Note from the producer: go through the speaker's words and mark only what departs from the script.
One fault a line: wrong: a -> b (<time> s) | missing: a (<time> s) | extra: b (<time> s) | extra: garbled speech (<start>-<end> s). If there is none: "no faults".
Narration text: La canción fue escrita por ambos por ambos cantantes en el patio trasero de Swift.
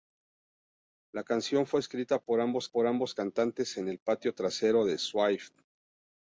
no faults